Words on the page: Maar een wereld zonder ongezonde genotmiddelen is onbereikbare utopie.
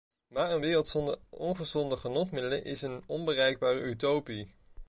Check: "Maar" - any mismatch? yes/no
no